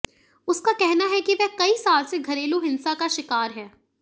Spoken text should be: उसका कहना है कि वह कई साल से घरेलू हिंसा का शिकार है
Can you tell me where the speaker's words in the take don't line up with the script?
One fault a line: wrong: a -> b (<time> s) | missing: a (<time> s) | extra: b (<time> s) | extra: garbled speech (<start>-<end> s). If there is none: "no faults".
no faults